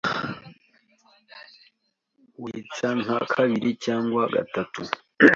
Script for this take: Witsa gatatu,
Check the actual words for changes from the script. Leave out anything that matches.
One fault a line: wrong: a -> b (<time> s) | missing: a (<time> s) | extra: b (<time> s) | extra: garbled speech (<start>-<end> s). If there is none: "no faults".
extra: nka kabiri cyangwa (3.0 s)